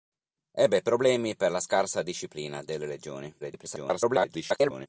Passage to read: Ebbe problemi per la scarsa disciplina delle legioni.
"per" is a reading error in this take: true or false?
false